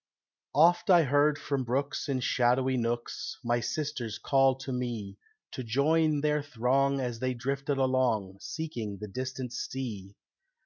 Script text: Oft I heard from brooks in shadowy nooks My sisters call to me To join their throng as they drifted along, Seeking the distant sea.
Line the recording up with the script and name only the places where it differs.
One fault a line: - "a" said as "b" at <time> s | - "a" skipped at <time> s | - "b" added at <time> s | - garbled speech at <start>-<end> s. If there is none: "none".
none